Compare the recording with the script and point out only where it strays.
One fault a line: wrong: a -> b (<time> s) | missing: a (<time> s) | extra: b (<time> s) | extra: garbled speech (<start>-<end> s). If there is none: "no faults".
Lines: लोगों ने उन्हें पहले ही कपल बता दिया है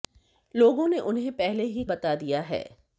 missing: कपल (1.8 s)